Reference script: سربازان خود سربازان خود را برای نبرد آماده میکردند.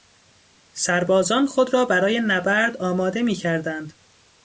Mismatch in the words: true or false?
true